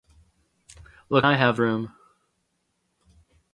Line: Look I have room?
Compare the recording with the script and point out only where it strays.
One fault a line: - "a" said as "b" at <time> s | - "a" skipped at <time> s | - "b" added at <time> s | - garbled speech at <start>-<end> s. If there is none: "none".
none